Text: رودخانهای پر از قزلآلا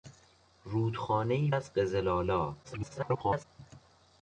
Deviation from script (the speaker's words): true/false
true